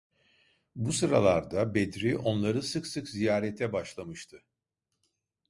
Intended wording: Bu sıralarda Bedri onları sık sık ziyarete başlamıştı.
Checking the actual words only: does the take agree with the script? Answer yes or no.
yes